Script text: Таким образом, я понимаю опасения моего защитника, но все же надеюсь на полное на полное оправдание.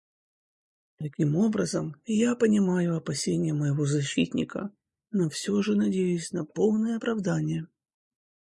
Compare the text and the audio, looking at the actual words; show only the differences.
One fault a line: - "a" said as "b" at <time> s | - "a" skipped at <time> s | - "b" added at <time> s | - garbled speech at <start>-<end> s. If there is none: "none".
- "на полное" skipped at 7.0 s